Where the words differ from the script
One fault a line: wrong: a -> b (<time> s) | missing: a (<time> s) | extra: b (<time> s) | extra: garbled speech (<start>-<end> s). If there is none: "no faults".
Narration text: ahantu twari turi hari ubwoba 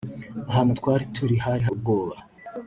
no faults